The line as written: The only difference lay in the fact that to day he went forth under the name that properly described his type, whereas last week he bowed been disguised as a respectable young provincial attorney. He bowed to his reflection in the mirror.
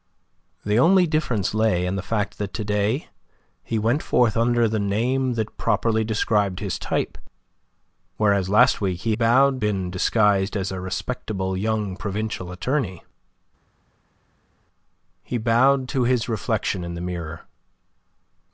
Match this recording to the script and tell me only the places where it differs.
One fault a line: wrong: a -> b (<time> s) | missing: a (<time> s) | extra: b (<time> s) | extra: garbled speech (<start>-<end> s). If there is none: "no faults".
no faults